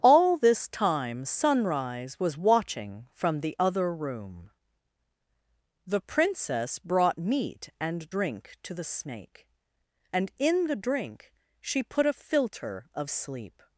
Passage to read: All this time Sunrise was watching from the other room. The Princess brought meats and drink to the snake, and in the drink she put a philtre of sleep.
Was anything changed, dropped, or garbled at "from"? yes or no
no